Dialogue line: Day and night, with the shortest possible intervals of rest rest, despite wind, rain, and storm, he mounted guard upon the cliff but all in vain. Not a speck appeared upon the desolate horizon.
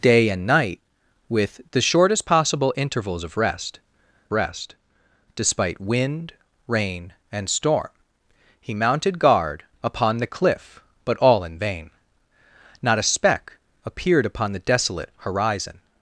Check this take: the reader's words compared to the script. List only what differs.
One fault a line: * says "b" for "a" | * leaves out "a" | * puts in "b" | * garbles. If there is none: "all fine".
all fine